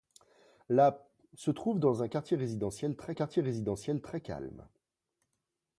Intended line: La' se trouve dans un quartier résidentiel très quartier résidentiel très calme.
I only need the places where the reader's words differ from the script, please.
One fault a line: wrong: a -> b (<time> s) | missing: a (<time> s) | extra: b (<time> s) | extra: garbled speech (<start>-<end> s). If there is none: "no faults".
no faults